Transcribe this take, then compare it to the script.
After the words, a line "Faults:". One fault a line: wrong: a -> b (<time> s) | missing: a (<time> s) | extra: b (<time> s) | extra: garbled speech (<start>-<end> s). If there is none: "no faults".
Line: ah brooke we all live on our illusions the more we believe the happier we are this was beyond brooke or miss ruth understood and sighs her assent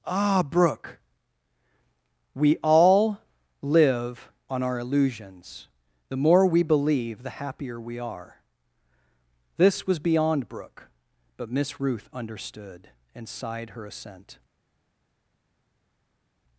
ah brooke we all live on our illusions the more we believe the happier we are this was beyond brooke but miss ruth understood and sighed her assent
Faults:
wrong: or -> but (11.4 s)
wrong: sighs -> sighed (13.3 s)